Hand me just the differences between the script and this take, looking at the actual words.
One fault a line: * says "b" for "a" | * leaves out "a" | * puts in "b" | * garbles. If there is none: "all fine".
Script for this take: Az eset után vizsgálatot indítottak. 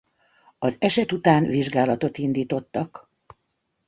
all fine